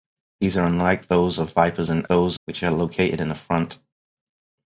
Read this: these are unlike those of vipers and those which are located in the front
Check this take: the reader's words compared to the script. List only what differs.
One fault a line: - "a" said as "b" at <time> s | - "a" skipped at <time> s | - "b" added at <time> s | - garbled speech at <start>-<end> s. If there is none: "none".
none